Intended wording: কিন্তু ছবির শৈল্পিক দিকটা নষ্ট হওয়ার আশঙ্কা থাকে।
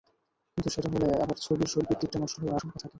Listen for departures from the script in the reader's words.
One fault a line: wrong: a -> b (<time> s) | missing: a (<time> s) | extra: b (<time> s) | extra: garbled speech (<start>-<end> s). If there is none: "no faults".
extra: সেটা হলে আবার (0.7 s)